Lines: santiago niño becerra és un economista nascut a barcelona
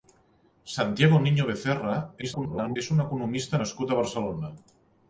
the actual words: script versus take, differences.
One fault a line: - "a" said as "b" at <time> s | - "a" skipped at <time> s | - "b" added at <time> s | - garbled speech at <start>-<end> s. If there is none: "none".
- garbled speech at 2.2-2.8 s